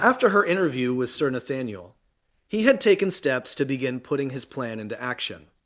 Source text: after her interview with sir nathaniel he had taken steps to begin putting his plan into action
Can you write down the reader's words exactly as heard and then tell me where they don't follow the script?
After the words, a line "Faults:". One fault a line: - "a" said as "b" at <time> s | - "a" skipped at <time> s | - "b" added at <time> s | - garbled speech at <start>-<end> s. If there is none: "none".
after her interview with sir nathaniel he had taken steps to begin putting his plan into action
Faults:
none